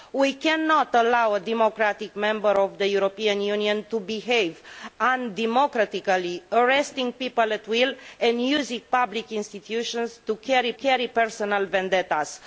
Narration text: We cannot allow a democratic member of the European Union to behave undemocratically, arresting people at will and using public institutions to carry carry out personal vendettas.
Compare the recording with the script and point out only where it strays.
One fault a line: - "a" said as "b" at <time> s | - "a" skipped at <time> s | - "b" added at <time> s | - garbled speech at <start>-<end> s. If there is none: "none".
none